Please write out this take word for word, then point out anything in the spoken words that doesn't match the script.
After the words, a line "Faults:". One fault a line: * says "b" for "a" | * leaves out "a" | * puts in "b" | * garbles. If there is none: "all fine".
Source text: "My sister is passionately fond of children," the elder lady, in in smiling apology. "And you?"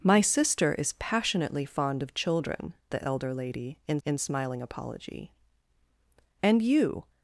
"My sister is passionately fond of children," the elder lady, in in smiling apology. "And you?"
Faults:
all fine